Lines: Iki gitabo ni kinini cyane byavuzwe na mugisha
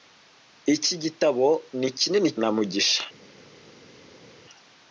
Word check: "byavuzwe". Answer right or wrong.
wrong